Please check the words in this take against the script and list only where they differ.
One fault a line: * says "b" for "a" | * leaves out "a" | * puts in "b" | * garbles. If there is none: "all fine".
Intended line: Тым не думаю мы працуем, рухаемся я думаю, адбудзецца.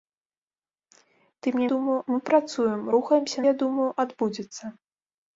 all fine